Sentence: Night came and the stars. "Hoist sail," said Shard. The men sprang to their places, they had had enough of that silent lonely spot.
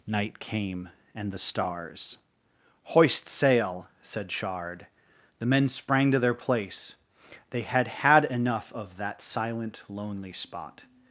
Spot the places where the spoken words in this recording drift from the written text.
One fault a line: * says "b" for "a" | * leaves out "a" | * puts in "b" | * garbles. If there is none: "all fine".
* says "place" for "places"